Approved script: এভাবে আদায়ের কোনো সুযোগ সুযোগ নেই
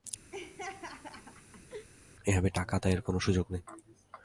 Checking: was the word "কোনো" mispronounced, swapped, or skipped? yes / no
no